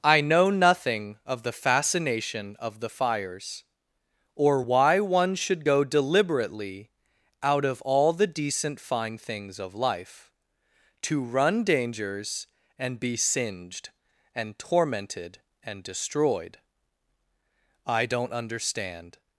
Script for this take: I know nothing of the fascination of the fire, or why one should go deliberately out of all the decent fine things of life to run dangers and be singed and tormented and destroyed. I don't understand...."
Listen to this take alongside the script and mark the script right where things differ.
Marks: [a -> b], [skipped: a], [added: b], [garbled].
I know nothing of the fascination of the [fire, -> fires] or why one should go deliberately out of all the decent fine things of life to run dangers and be singed and tormented and destroyed. I don't understand...."